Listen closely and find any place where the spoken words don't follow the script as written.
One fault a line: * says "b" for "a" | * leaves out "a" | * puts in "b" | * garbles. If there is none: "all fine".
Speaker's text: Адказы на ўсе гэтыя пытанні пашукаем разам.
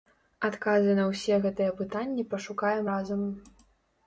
all fine